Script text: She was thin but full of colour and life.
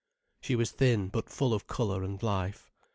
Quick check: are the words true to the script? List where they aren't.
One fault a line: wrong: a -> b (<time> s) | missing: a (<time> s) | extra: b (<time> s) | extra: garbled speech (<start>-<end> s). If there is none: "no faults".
no faults